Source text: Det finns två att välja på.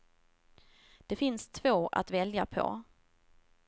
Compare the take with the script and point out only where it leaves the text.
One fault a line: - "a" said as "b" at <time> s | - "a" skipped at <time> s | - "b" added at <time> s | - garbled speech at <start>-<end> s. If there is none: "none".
none